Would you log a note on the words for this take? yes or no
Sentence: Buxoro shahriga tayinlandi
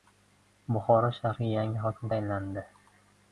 yes